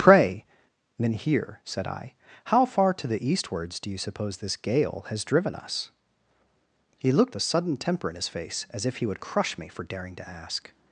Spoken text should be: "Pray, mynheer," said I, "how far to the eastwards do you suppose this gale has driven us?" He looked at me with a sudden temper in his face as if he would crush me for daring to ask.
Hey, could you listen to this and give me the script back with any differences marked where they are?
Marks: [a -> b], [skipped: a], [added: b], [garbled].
"Pray, mynheer," said I, "how far to the eastwards do you suppose this gale has driven us?" He looked [skipped: at me with] a sudden temper in his face as if he would crush me for daring to ask.